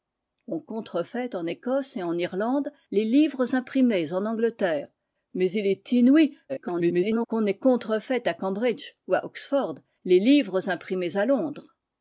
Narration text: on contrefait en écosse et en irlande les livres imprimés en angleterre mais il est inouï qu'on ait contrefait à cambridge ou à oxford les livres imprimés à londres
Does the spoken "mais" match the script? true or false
true